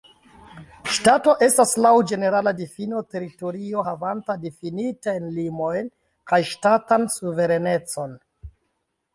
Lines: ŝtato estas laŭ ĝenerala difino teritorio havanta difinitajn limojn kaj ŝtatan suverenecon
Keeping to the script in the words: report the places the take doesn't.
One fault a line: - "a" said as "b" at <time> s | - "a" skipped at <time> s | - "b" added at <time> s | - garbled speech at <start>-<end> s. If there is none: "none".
none